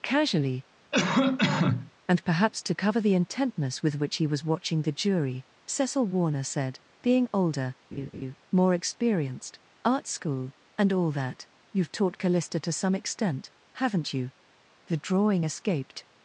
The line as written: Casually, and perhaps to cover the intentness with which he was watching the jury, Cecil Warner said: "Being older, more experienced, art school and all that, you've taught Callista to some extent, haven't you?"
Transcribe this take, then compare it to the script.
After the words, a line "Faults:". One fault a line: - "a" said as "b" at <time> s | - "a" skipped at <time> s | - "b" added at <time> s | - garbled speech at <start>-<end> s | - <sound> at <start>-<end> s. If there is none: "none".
Casually, and perhaps to cover the intentness with which he was watching the jury, Cecil Warner said: "Being older, more experienced, art school and all that, you've taught Callista to some extent, haven't you?" The drawing escaped
Faults:
- cough at 0.9-1.9 s
- laugh at 7.9-8.4 s
- "The drawing escaped" added at 14.9 s